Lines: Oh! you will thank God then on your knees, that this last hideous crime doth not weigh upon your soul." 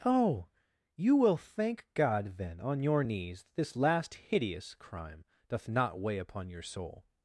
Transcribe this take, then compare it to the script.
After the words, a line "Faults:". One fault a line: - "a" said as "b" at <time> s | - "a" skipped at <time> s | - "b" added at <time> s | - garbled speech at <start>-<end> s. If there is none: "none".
Oh! you will thank God then on your knees, that this last hideous crime doth not weigh upon your soul."
Faults:
none